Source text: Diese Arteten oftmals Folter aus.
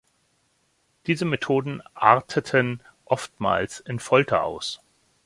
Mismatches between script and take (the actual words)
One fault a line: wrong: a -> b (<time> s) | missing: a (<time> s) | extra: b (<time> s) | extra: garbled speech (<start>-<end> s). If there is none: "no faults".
extra: Methoden (1.2 s)
extra: in (3.8 s)